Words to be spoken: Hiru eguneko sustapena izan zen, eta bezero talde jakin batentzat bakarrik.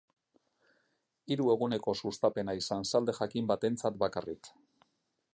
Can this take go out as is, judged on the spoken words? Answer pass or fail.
fail